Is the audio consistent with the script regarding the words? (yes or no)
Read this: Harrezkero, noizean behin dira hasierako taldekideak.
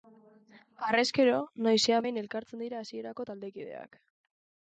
no